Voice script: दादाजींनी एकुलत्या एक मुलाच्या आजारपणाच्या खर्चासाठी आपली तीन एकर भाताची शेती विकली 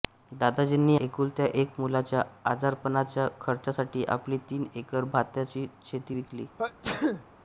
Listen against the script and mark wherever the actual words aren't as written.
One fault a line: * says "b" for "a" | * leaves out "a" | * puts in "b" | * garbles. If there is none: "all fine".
all fine